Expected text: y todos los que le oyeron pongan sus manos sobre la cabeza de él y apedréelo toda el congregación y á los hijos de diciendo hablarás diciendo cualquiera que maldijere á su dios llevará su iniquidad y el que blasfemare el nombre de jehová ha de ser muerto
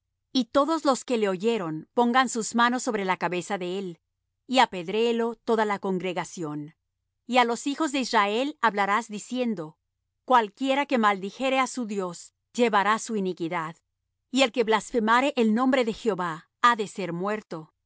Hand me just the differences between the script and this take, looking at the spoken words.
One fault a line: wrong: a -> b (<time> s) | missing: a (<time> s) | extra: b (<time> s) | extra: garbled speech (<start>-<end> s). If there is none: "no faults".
wrong: el -> la (5.7 s)
wrong: diciendo -> israel (8.0 s)